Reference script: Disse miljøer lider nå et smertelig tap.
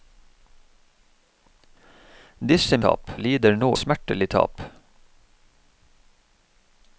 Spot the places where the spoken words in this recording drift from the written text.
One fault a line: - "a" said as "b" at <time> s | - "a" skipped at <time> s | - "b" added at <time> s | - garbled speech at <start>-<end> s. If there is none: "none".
- "miljøer" said as "tap" at 2.8 s
- "et" skipped at 3.7 s